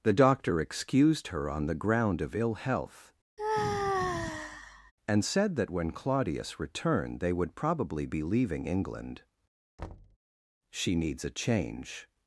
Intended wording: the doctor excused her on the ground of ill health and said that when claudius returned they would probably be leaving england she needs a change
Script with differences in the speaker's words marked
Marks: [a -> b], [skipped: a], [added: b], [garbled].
the doctor excused her on the ground of ill health and said that when claudius returned they would probably be leaving england she needs a change